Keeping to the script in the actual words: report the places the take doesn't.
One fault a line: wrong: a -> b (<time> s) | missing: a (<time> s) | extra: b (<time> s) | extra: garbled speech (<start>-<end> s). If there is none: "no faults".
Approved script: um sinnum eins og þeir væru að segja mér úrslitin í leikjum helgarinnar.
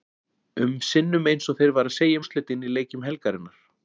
missing: mér (2.2 s)